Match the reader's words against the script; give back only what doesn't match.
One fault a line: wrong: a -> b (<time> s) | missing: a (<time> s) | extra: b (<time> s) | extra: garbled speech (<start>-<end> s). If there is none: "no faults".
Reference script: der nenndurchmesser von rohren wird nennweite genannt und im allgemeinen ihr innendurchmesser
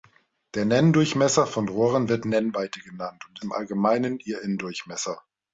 no faults